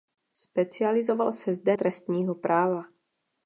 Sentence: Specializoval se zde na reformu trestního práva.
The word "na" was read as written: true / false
false